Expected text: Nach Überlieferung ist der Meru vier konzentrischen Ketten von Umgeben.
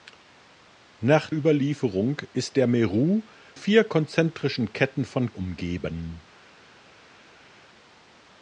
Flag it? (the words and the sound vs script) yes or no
no